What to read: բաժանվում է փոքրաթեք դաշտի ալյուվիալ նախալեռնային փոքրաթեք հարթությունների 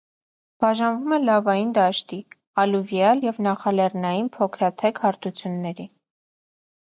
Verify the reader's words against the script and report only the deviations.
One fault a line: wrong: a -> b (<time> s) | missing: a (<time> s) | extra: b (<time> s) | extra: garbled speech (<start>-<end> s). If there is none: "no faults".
wrong: փոքրաթեք -> լավային (1.2 s)
extra: և (3.2 s)